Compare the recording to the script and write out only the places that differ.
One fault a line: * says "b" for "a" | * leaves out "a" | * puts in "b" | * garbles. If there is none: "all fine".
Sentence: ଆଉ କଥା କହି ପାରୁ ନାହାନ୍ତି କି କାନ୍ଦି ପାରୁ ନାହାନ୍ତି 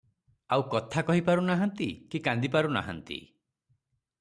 all fine